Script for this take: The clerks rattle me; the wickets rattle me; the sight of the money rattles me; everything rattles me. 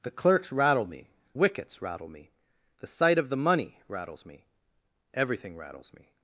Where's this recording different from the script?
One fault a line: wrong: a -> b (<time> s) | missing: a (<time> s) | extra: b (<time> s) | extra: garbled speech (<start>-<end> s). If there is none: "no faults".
missing: the (1.1 s)